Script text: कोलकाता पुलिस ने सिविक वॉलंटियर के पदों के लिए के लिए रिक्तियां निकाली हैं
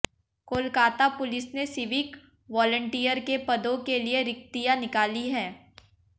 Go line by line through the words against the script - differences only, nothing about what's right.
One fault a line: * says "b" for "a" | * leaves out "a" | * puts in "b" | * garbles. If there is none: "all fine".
* leaves out "के लिए"